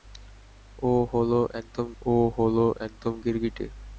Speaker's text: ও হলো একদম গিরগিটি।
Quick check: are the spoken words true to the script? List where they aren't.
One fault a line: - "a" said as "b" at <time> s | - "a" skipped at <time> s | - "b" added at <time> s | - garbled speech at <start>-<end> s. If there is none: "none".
- "ও হলো একদম" added at 2.0 s